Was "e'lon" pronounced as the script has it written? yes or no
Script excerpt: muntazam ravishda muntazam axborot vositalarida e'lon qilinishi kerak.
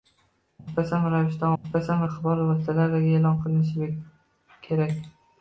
yes